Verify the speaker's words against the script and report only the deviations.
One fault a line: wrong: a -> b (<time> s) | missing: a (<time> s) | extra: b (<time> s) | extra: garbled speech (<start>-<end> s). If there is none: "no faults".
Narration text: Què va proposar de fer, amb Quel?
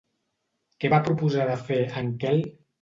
wrong: amb -> en (2.0 s)